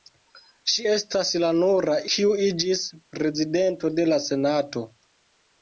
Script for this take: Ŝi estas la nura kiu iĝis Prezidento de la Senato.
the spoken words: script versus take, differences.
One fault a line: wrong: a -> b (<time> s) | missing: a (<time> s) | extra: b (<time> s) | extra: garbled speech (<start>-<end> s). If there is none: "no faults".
no faults